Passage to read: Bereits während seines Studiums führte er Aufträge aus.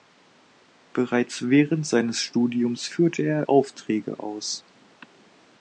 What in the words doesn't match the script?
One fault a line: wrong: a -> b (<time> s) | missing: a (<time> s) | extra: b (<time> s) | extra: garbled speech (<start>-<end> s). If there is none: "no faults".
no faults